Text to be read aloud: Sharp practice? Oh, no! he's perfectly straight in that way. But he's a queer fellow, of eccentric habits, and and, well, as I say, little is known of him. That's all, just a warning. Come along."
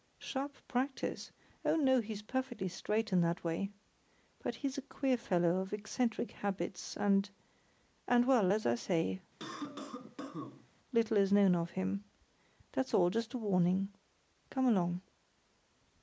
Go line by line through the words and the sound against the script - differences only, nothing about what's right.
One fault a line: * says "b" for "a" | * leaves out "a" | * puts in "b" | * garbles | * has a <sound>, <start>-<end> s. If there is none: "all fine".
* has a cough, 9.4-10.7 s